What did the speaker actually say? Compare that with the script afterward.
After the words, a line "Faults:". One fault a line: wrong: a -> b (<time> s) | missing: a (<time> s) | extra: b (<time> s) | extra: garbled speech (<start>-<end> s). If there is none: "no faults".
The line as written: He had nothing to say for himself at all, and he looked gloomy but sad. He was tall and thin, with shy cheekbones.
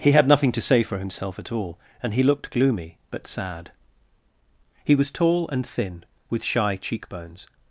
He had nothing to say for himself at all, and he looked gloomy but sad. He was tall and thin, with shy cheekbones.
Faults:
no faults